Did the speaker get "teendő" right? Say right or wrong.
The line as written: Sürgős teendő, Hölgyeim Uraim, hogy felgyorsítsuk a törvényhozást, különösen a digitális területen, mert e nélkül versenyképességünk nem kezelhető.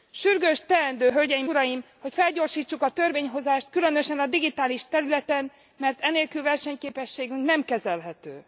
right